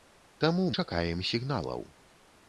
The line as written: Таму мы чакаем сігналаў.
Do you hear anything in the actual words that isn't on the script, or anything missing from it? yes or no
yes